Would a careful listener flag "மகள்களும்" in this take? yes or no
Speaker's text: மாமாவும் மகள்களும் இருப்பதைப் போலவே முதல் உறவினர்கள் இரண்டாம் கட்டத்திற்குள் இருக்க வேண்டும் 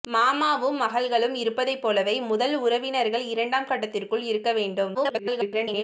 no